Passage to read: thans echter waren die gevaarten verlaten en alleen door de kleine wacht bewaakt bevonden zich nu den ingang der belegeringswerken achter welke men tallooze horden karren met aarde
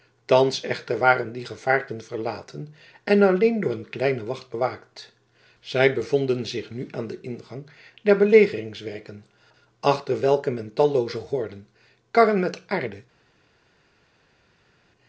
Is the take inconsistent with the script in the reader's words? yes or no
yes